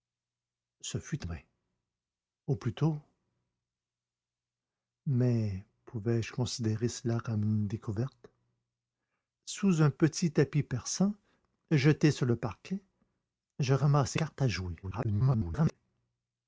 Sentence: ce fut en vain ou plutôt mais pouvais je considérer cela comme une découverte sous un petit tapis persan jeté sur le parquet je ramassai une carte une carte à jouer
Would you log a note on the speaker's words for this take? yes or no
yes